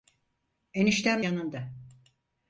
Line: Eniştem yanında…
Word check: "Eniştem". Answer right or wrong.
right